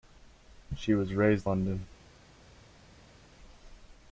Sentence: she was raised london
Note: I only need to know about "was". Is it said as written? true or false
true